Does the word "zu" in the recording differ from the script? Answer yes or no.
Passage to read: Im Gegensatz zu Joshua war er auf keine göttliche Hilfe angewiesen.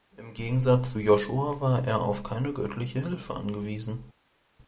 yes